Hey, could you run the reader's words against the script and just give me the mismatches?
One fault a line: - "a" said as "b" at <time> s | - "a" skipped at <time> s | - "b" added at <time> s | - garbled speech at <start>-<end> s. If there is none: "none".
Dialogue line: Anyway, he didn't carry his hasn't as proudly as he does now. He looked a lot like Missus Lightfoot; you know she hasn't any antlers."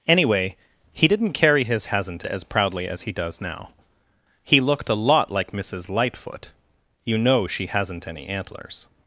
none